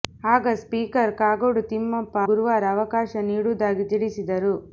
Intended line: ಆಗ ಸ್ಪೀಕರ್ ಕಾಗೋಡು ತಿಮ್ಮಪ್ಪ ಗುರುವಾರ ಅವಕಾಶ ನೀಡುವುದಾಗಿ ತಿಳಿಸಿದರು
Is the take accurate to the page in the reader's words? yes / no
yes